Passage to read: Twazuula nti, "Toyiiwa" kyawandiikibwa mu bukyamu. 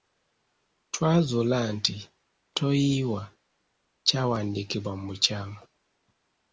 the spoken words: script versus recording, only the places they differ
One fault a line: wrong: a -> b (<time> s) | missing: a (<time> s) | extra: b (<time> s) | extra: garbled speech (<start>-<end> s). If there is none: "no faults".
no faults